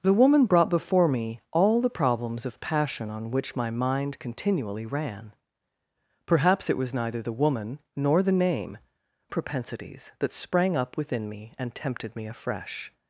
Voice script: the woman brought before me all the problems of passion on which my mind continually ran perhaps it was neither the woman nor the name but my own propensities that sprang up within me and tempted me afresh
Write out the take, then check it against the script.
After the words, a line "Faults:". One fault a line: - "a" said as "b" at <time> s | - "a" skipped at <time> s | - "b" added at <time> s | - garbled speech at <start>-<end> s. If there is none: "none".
the woman brought before me all the problems of passion on which my mind continually ran perhaps it was neither the woman nor the name propensities that sprang up within me and tempted me afresh
Faults:
- "but my own" skipped at 8.8 s